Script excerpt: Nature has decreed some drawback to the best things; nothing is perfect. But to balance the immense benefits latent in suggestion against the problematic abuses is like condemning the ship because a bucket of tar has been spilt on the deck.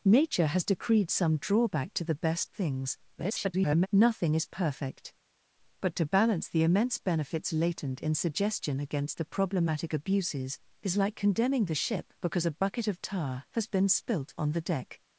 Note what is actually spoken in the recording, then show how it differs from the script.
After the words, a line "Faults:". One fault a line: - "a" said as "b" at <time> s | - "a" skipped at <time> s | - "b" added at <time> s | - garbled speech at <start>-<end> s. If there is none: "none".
Nature has decreed some drawback to the best things; [garbled] nothing is perfect. But to balance the immense benefits latent in suggestion against the problematic abuses is like condemning the ship because a bucket of tar has been spilt on the deck.
Faults:
- garbled speech at 3.2-3.9 s